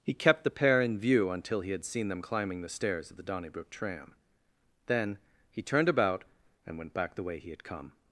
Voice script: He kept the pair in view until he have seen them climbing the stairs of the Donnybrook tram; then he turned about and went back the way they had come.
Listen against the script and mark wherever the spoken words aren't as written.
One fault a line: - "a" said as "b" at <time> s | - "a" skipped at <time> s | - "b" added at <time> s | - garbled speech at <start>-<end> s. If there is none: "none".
- "have" said as "had" at 1.7 s
- "they" said as "he" at 7.4 s